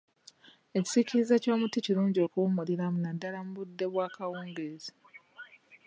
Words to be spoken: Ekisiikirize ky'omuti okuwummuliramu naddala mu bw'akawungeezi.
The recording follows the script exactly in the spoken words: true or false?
false